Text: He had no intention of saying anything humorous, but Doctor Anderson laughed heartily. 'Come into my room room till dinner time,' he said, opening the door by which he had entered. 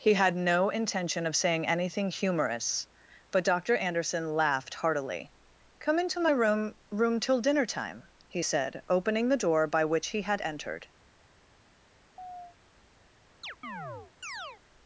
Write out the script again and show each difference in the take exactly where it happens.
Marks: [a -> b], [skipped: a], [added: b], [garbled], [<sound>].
He had no intention of saying anything humorous, but Doctor Anderson laughed heartily. 'Come into my room room till dinner time,' he said, opening the door by which he had entered. [chirp] [chirp]